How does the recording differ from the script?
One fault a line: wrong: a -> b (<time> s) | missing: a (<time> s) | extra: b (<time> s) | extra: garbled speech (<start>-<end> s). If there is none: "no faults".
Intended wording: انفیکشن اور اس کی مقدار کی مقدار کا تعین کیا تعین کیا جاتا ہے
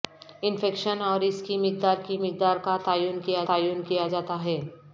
no faults